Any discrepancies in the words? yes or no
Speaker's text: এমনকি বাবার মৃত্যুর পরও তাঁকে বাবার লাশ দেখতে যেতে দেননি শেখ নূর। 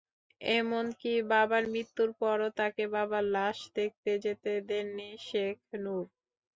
no